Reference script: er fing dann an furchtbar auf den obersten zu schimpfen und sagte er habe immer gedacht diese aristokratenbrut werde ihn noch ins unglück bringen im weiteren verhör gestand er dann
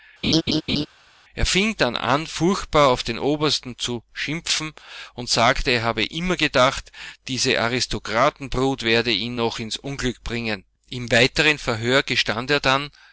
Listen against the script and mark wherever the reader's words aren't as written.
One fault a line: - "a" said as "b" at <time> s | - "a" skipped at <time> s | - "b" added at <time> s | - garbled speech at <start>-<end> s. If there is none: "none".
none